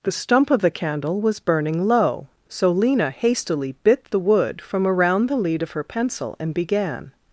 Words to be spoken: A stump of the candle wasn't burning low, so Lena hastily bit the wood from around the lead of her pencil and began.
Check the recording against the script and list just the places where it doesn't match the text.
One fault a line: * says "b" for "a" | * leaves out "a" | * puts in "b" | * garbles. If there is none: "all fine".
* says "The" for "A"
* says "was" for "wasn't"